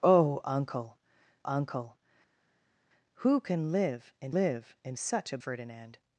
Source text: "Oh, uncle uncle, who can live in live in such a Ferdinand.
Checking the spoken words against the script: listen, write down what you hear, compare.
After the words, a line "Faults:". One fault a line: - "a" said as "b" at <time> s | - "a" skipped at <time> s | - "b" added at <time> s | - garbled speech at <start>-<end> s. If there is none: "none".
"Oh, uncle uncle, who can live in live in such a Ferdinand.
Faults:
none